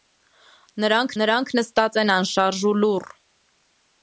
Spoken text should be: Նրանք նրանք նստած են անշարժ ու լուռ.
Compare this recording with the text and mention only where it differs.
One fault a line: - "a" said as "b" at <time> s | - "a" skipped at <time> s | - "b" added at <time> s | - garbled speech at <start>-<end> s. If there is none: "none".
none